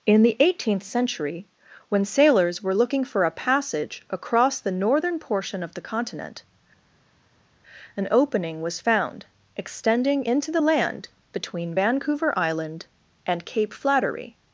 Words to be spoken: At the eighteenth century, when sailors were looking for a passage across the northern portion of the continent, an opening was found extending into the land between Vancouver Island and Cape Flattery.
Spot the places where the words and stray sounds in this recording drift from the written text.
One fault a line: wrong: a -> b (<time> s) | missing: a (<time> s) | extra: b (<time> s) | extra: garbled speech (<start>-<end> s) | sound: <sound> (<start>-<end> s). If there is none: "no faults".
wrong: At -> In (0.1 s)